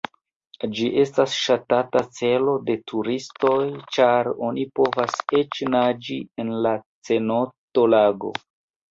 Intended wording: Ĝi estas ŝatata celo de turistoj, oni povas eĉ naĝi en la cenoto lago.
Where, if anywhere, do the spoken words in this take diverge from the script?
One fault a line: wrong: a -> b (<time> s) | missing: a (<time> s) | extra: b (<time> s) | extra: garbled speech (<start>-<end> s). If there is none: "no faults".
extra: ĉar (4.0 s)